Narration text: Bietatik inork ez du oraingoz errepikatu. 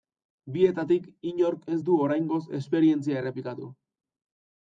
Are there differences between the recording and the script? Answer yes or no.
yes